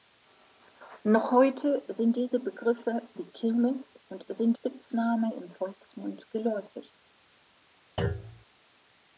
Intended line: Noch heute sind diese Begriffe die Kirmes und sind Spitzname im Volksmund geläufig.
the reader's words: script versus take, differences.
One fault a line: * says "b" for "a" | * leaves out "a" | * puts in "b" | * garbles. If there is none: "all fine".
all fine